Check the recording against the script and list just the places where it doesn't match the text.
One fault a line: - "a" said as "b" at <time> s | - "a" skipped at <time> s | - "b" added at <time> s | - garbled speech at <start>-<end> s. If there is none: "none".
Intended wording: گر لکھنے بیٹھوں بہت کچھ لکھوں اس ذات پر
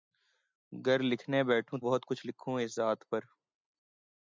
none